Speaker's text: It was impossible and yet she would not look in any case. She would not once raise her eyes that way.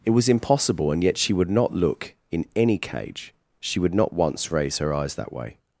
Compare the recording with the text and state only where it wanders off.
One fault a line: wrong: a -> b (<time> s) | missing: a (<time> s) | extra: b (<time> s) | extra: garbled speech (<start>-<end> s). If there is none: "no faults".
wrong: case -> cage (2.8 s)